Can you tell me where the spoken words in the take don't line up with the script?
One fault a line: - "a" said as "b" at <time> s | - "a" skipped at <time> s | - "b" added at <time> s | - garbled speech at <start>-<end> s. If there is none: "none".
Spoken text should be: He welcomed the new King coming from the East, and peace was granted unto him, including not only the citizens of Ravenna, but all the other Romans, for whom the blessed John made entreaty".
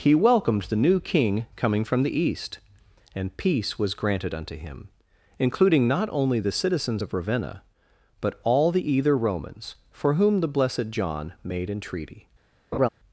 - "other" said as "either" at 8.9 s